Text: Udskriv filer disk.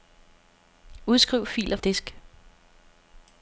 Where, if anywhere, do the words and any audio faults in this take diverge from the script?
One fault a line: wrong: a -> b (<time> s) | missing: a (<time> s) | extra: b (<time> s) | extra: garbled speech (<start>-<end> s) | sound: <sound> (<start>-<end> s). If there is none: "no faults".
no faults